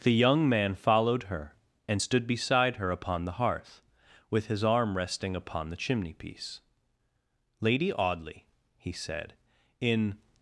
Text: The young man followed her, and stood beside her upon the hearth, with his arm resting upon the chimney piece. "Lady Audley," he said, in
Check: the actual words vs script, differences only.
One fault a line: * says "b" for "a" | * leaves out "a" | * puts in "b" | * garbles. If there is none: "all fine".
all fine